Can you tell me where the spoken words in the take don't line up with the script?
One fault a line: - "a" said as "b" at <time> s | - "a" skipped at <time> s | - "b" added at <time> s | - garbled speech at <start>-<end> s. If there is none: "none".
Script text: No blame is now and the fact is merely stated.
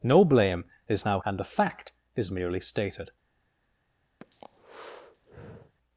none